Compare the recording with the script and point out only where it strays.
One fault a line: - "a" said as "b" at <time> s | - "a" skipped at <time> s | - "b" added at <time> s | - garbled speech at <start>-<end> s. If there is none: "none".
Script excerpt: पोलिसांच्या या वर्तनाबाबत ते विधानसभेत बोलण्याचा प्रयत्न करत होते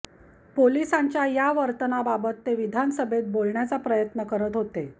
none